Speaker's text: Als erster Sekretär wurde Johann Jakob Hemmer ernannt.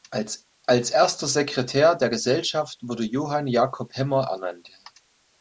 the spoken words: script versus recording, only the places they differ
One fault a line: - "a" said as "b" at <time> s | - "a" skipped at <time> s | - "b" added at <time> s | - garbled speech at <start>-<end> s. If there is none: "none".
- "der Gesellschaft" added at 1.9 s